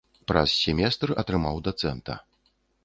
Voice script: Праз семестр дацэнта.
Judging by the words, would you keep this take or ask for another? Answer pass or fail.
fail